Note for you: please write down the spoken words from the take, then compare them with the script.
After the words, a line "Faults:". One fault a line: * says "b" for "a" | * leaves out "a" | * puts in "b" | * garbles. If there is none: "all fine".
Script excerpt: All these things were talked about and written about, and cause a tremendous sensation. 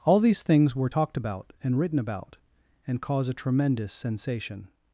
All these things were talked about and written about, and cause a tremendous sensation.
Faults:
all fine